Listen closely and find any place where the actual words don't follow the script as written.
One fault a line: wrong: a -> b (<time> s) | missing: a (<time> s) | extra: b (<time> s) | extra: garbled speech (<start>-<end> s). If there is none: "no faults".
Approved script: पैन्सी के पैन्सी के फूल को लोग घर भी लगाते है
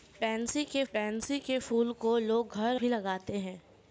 no faults